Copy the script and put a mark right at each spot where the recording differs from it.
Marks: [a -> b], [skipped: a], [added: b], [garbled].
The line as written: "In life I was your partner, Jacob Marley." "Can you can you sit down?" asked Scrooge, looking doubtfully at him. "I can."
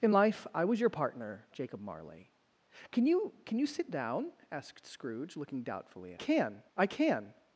"In life I was your partner, Jacob Marley." "Can you can you sit down?" asked Scrooge, looking doubtfully at [him. -> can] "I can."